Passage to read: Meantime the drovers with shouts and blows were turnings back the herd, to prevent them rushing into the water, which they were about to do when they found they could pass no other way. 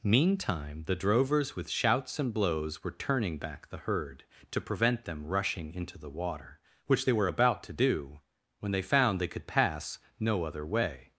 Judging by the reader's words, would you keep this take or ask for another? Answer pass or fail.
fail